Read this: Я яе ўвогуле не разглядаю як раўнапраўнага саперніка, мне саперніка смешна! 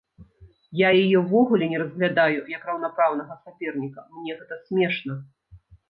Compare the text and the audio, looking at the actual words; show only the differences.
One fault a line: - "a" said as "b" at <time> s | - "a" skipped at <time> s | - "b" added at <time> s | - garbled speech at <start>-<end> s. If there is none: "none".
- "саперніка" said as "гэта" at 4.4 s